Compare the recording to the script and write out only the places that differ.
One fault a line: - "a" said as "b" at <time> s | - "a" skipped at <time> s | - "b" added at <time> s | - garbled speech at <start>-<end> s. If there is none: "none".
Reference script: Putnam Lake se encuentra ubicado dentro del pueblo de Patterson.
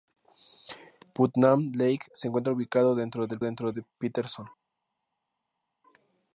- "pueblo" said as "dentro" at 3.4 s